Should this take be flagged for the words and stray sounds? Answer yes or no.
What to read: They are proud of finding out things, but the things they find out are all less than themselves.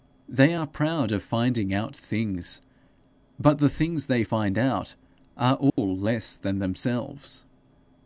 yes